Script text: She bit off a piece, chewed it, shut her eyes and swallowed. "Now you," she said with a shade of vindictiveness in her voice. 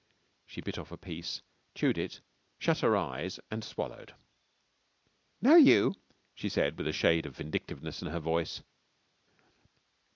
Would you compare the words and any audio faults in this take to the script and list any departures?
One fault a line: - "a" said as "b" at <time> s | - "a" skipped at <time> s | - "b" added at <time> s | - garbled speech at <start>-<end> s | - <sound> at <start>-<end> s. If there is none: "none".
none